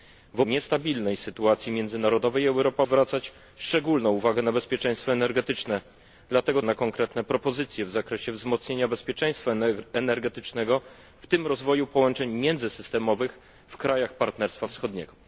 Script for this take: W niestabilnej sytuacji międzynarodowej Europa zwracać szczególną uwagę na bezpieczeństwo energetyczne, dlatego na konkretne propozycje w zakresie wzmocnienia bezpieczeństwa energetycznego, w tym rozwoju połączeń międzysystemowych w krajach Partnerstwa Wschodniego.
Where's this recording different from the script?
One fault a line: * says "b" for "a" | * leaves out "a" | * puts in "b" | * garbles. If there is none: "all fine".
all fine